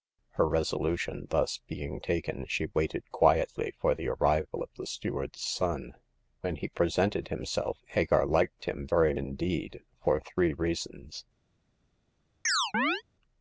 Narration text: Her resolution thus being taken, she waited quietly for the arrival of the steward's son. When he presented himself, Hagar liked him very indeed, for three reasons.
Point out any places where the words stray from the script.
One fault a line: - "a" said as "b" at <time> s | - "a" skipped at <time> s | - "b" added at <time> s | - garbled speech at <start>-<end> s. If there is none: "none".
none